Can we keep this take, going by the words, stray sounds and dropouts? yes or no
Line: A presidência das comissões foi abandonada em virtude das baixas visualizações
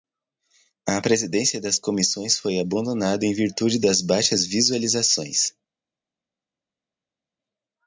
yes